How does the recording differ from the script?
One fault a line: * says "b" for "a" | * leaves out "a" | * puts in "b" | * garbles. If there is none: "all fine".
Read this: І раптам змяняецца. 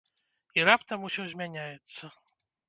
* puts in "усё"